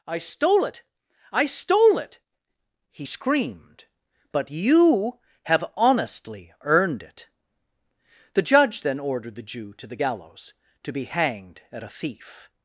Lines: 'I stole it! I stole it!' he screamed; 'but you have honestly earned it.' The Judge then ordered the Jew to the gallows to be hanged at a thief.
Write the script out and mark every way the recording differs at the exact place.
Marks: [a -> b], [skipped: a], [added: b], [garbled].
'I stole it! I stole it!' he screamed; 'but you have honestly earned it.' The Judge then ordered the Jew to the gallows to be hanged at a thief.